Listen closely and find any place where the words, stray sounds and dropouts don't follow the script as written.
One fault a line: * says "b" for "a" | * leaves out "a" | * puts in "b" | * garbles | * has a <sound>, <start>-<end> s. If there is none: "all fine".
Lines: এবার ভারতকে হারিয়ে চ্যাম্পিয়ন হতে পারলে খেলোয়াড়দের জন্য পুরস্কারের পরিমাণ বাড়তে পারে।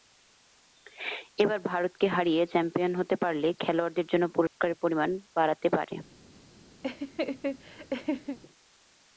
* has a dropout, 4.5-4.6 s
* has a laugh, 6.8-8.4 s